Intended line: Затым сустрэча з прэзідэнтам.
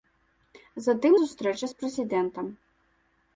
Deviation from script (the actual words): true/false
false